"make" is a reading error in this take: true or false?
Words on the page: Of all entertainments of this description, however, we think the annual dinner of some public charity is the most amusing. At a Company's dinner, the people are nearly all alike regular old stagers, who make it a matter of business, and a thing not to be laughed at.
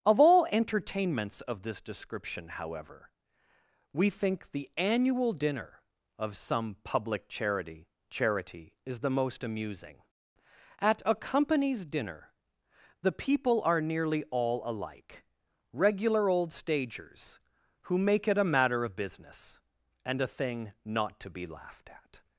false